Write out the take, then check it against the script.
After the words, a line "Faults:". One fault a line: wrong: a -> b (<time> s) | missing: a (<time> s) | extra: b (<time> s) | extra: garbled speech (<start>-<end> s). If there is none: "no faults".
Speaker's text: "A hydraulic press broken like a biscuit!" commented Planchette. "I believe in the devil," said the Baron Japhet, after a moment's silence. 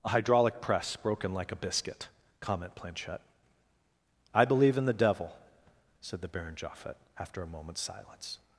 "A hydraulic press broken like a biscuit!" comment Planchette. "I believe in the devil," said the Baron Japhet, after a moment's silence.
Faults:
wrong: commented -> comment (2.4 s)